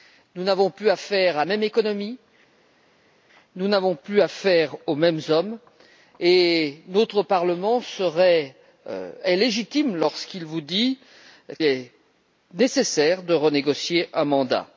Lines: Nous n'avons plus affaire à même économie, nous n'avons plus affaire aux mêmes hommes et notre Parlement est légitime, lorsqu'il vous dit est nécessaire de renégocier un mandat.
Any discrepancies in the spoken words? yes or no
no